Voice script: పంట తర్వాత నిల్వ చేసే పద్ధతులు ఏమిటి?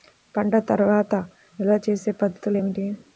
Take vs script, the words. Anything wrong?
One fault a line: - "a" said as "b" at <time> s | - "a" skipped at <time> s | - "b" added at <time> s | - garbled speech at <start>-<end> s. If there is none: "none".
none